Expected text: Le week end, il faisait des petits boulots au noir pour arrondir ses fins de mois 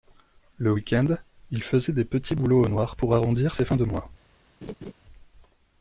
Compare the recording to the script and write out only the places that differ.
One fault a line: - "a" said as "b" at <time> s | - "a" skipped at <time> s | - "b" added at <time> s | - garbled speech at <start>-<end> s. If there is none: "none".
none